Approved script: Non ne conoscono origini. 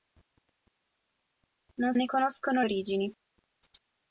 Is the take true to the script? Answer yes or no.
yes